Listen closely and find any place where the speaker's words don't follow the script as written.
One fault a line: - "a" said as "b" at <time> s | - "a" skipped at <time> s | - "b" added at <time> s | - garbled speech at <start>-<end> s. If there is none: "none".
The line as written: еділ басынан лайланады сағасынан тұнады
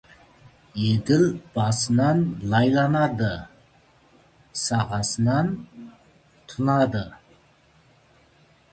none